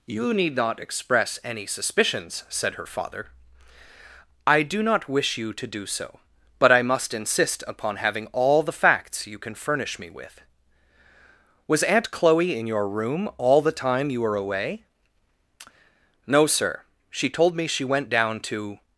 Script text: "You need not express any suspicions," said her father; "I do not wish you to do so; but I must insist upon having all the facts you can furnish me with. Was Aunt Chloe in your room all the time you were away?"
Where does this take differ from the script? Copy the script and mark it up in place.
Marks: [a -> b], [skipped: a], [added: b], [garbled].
"You need not express any suspicions," said her father; "I do not wish you to do so; but I must insist upon having all the facts you can furnish me with. Was Aunt Chloe in your room all the time you were away?" [added: No sir she told me she went down to]